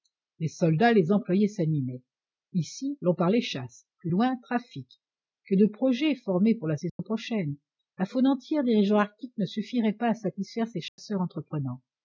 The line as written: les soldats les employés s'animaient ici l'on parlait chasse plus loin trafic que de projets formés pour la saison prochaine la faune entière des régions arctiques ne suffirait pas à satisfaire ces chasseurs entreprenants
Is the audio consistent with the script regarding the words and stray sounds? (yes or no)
no